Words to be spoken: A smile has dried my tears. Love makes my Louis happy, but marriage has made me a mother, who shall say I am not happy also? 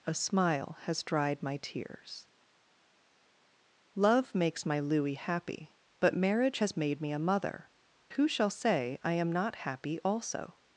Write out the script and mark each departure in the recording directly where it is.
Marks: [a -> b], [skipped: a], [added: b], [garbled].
A smile has dried my tears. Love makes my Louis happy, but marriage has made me a mother, who shall say I am not happy also?